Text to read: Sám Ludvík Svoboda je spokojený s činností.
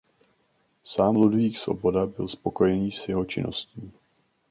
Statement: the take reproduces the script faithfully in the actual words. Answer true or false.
false